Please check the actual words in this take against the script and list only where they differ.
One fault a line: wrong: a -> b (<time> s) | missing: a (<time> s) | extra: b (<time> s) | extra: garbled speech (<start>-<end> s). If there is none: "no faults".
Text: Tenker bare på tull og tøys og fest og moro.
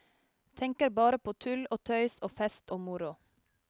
no faults